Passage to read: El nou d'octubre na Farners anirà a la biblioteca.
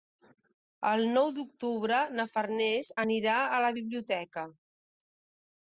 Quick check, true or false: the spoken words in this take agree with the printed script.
true